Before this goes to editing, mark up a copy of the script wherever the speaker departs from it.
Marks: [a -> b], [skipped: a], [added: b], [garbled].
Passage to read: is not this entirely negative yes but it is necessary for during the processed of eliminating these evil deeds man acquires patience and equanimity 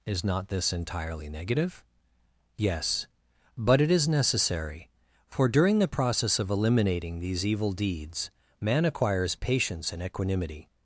is not this entirely negative yes but it is necessary for during the [processed -> process] of eliminating these evil deeds man acquires patience and equanimity